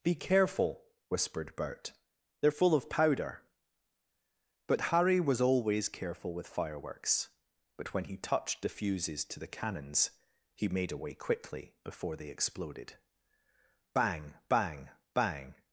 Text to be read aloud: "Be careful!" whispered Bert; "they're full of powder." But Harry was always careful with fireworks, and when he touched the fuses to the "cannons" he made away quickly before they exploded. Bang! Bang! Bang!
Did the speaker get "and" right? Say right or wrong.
wrong